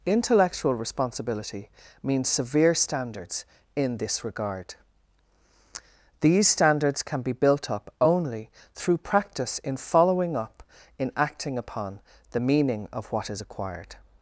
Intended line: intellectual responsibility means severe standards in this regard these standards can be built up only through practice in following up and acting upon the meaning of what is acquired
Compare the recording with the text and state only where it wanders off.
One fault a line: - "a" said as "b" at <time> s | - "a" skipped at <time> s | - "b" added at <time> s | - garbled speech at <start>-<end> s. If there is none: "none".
- "and" said as "in" at 11.0 s